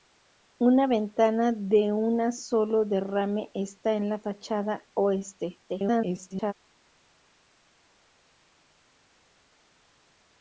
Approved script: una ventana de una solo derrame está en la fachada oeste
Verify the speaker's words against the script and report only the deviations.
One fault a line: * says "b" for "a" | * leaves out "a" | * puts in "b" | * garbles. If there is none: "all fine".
* garbles